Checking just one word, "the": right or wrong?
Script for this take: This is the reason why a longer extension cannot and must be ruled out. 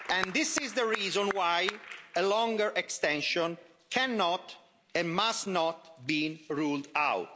right